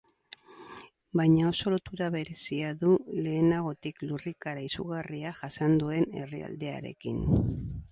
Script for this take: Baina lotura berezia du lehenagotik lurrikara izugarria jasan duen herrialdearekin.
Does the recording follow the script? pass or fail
fail